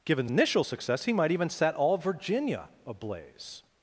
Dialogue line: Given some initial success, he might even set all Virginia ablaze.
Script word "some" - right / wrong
wrong